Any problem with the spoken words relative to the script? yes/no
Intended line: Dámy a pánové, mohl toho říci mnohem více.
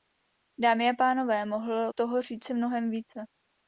no